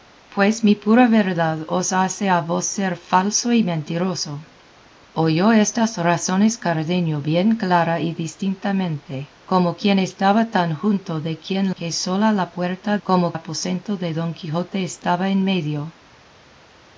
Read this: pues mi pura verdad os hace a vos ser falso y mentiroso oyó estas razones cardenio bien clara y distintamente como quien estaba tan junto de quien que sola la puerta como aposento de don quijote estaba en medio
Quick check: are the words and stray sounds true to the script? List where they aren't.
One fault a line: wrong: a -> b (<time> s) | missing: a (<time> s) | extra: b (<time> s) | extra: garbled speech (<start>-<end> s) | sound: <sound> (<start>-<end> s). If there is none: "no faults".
no faults